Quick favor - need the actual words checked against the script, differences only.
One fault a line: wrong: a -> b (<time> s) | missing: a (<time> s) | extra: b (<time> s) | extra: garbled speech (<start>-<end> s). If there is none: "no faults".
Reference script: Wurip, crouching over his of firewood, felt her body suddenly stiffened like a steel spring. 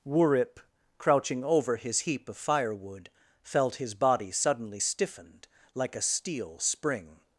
extra: heap (2.0 s)
wrong: her -> his (3.8 s)